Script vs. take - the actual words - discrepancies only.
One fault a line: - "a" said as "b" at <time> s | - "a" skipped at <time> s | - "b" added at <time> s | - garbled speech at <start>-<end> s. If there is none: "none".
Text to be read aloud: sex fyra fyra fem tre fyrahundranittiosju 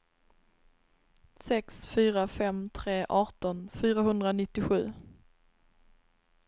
- "fyra" skipped at 2.2 s
- "arton" added at 3.2 s